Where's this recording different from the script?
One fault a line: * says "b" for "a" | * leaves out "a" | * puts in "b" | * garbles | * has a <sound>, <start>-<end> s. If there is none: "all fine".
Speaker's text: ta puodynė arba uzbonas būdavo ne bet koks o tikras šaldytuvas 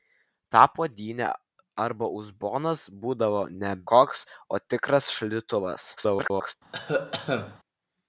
* leaves out "bet"
* garbles
* has a cough, 6.7-7.6 s